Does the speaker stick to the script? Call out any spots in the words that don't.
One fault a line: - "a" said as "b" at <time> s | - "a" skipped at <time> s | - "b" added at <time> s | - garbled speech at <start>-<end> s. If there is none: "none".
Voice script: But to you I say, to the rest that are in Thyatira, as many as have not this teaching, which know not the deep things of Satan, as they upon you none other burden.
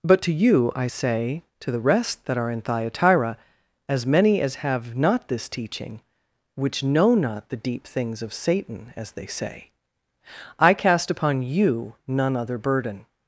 - "say I cast" added at 9.3 s